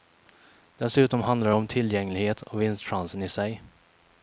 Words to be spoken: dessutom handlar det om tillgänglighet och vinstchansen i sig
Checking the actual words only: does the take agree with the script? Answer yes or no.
yes